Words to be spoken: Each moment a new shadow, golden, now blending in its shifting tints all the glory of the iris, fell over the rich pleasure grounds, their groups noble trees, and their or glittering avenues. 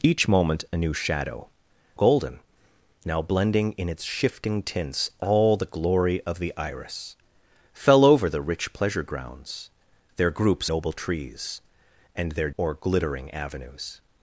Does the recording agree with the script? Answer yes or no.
yes